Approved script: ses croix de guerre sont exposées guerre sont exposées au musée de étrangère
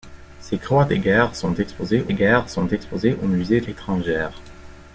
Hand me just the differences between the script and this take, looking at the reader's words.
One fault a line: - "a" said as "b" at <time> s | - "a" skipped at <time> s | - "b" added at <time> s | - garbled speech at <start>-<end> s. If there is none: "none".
none